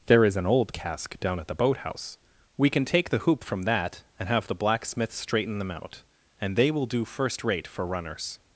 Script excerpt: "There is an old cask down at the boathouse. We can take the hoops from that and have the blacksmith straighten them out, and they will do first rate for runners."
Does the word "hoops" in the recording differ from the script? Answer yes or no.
yes